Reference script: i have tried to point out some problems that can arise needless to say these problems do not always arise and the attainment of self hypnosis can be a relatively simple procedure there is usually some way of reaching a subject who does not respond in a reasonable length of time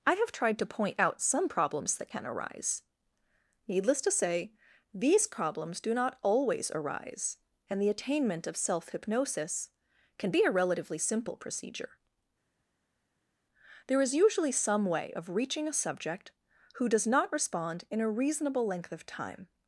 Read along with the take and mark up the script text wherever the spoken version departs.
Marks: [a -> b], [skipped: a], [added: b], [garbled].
i have tried to point out some problems that can arise needless to say these problems do not always arise and the attainment of self hypnosis can be a relatively simple procedure there is usually some way of reaching a subject who does not respond in a reasonable length of time